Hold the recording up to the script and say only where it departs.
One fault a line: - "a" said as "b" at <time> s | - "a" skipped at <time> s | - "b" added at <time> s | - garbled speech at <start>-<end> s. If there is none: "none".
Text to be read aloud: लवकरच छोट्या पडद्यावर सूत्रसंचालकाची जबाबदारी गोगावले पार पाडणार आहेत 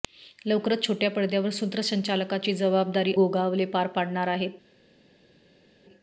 none